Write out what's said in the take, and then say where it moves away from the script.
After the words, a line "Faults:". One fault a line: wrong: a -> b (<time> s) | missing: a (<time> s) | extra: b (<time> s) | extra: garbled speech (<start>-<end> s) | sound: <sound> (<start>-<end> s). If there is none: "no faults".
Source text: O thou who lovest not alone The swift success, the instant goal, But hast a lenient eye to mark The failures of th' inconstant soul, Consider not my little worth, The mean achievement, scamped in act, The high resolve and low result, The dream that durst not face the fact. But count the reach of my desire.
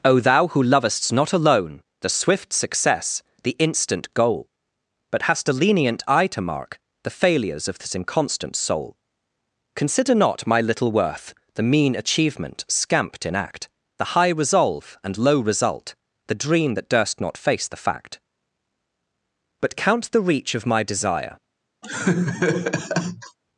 O thou who lovest not alone The swift success, the instant goal, But hast a lenient eye to mark The failures of this' inconstant soul, Consider not my little worth, The mean achievement, scamped in act, The high resolve and low result, The dream that durst not face the fact. But count the reach of my desire.
Faults:
wrong: th -> this (7.8 s)
sound: laugh (21.8-23.4 s)